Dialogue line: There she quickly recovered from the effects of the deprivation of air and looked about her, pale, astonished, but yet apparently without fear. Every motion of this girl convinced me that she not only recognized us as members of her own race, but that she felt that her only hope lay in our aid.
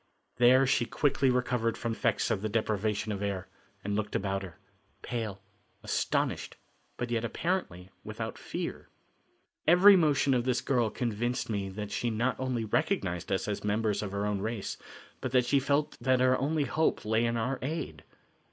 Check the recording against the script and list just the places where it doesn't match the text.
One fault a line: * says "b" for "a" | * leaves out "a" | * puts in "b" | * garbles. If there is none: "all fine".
* leaves out "the"